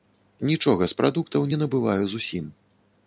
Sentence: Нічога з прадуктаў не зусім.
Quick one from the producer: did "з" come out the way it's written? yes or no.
yes